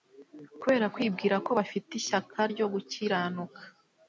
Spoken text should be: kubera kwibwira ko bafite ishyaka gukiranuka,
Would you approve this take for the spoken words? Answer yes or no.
no